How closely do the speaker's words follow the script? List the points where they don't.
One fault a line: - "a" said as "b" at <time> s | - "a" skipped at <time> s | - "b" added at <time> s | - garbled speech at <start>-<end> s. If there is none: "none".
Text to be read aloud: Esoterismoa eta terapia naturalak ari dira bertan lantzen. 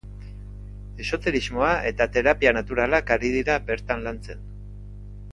none